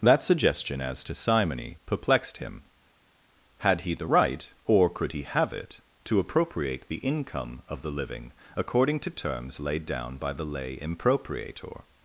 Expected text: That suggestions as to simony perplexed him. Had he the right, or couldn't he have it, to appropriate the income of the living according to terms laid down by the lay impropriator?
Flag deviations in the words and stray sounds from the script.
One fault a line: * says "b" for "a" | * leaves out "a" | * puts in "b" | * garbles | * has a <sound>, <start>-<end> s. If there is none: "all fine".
* says "suggestion" for "suggestions"
* says "could" for "couldn't"